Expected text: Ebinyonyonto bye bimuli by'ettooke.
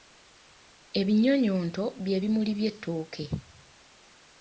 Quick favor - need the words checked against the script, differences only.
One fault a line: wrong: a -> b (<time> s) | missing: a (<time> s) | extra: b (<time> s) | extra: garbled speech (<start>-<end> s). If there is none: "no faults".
no faults